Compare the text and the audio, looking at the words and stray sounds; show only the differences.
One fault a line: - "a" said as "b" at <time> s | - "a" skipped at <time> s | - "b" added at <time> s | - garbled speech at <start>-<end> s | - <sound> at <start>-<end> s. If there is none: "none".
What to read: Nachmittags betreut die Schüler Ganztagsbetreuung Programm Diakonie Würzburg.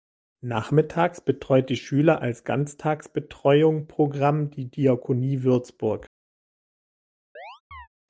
- "als" added at 2.2 s
- "die" added at 4.5 s
- chirp at 7.4-7.9 s